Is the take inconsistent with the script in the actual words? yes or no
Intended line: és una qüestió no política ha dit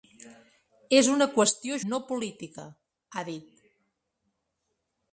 no